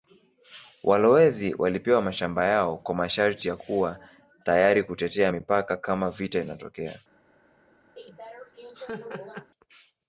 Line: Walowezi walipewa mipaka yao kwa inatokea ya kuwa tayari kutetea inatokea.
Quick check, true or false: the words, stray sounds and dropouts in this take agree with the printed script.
false